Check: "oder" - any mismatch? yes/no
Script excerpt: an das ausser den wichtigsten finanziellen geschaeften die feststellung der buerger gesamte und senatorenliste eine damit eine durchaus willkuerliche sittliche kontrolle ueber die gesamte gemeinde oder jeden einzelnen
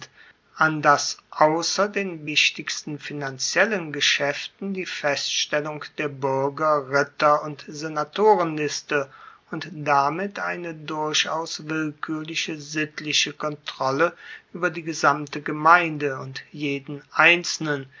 yes